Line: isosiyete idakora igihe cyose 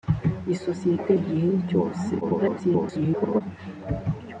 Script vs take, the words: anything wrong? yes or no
yes